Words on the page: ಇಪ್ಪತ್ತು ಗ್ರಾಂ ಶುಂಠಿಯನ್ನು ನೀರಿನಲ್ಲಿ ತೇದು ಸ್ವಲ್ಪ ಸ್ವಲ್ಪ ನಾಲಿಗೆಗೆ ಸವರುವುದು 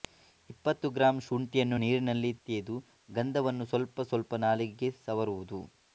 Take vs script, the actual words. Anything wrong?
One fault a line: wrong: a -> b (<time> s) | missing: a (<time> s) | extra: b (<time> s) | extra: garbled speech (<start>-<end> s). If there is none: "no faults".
extra: ಗಂಧವನ್ನು (3.1 s)